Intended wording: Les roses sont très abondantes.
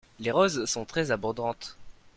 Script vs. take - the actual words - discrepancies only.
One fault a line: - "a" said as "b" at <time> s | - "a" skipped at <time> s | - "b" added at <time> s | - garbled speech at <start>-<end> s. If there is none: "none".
none